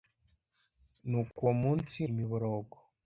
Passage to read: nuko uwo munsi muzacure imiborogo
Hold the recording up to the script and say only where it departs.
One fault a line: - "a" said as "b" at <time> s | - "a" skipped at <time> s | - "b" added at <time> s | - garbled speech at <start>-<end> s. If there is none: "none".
- "muzacure" skipped at 2.0 s